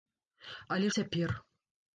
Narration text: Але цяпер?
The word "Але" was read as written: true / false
true